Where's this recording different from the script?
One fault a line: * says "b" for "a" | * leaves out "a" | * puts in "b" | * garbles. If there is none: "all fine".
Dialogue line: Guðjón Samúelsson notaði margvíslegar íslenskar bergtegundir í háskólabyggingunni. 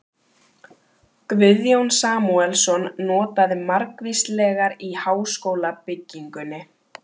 * leaves out "íslenskar bergtegundir"